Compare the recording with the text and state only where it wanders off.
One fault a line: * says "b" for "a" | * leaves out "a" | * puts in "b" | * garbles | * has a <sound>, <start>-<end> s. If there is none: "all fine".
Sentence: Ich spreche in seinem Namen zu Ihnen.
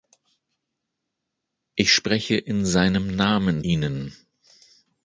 * leaves out "zu"